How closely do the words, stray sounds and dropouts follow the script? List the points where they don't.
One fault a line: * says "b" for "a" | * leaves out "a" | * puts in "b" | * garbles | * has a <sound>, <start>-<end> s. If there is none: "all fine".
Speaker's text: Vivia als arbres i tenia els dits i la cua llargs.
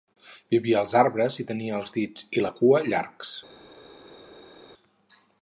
all fine